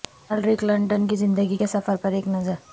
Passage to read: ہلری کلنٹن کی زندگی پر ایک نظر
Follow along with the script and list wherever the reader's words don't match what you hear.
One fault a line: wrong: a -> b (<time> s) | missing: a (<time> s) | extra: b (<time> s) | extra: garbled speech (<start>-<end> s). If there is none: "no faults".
extra: کے سفر (1.5 s)